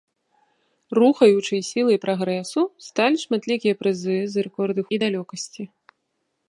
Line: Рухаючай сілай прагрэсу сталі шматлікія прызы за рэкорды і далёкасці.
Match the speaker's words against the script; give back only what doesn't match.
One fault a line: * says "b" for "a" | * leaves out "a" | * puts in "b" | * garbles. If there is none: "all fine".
all fine